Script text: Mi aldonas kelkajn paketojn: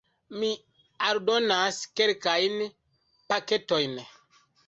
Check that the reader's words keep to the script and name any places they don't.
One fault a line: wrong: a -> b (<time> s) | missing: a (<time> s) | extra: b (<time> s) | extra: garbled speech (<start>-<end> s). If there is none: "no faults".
no faults